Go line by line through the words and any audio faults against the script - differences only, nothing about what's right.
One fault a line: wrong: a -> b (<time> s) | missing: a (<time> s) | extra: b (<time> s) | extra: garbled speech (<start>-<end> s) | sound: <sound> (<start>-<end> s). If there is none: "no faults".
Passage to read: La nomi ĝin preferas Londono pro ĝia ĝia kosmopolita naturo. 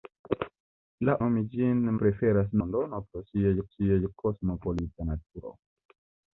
no faults